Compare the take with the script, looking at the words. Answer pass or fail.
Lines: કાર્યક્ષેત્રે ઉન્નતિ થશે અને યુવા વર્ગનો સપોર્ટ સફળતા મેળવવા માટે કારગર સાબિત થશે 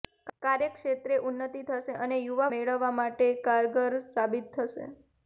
fail